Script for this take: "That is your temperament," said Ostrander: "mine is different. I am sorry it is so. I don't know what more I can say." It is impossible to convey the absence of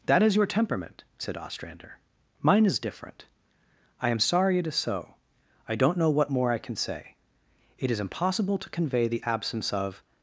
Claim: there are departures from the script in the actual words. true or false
false